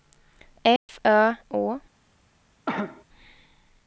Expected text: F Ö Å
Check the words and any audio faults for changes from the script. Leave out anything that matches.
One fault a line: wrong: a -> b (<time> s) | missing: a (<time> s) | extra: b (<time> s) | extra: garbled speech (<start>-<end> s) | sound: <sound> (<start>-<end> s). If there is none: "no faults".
sound: dropout (0.8-0.9 s)
sound: cough (2.7-3.0 s)